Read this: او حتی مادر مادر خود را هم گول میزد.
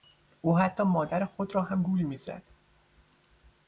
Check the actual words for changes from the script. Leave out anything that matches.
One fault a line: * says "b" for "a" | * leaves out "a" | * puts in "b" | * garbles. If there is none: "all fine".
* leaves out "مادر"